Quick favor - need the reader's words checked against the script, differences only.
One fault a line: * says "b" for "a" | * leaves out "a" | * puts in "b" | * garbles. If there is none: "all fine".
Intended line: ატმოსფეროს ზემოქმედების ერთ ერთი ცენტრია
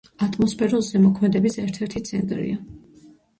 all fine